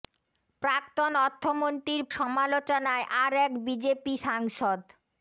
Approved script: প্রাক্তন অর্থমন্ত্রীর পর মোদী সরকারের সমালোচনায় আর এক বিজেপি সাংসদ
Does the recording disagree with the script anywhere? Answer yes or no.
yes